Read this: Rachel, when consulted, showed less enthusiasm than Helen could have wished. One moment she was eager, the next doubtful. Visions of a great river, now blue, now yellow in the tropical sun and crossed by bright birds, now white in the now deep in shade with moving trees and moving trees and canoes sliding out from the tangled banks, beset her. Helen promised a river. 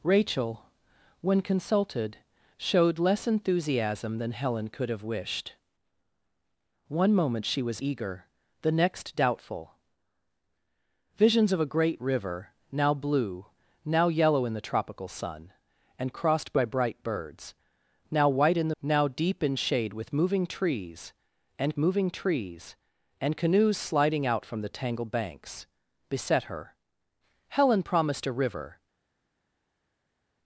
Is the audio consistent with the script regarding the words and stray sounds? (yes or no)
yes